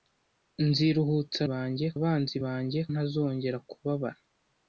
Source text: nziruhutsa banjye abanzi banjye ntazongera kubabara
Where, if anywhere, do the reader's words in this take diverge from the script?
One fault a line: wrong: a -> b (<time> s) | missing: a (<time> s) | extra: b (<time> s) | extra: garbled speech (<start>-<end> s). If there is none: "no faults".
no faults